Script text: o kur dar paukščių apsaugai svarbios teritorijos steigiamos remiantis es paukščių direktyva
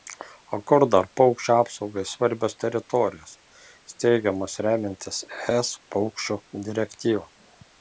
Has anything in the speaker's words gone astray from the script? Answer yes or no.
no